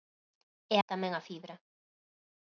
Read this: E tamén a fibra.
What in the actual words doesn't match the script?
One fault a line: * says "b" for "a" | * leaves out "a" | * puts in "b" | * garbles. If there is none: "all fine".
all fine